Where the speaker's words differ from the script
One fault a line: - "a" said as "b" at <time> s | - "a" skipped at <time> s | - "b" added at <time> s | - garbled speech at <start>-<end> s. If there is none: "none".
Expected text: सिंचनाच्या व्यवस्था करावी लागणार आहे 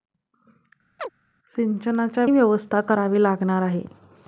none